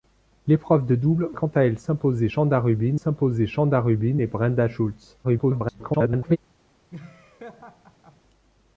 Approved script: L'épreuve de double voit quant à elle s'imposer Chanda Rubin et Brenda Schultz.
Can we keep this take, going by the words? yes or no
no